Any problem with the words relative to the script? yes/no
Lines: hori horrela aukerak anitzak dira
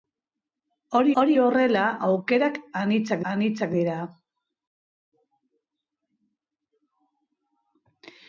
yes